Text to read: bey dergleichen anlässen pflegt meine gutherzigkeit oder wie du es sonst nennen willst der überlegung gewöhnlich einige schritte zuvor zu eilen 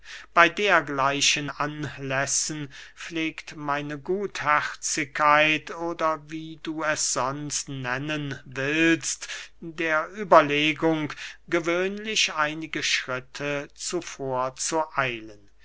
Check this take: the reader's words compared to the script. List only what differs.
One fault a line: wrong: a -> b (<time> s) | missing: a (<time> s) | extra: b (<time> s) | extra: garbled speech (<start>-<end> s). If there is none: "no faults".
no faults